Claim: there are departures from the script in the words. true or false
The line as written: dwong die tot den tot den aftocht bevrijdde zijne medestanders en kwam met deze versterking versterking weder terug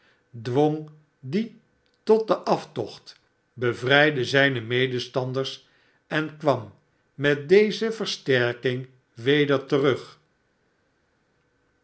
true